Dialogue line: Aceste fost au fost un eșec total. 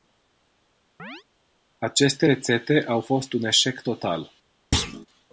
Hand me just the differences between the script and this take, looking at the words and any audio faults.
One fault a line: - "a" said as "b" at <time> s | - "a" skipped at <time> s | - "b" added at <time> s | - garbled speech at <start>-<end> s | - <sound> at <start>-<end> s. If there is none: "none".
- chirp at 1.0-1.2 s
- "fost" said as "rețete" at 2.2 s
- thud at 4.7-5.1 s